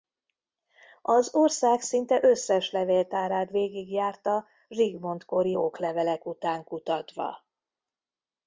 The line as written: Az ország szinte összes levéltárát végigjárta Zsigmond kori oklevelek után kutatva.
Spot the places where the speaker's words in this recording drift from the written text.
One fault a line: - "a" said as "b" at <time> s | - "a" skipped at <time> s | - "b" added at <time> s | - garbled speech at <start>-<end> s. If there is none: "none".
none